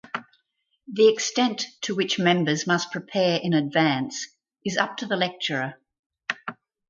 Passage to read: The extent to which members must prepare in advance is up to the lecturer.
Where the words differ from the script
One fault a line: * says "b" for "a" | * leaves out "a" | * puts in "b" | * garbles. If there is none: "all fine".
all fine